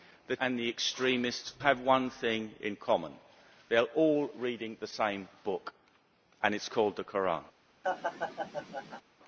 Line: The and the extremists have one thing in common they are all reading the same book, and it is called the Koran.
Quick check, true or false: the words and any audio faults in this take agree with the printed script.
false